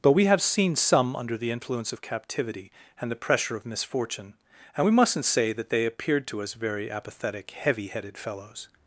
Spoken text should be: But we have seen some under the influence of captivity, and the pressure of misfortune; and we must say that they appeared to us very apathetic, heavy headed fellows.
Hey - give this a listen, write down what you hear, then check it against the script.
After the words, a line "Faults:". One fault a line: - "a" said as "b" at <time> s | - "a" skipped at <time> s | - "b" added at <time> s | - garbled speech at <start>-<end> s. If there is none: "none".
But we have seen some under the influence of captivity, and the pressure of misfortune; and we mustn't say that they appeared to us very apathetic, heavy headed fellows.
Faults:
- "must" said as "mustn't" at 4.9 s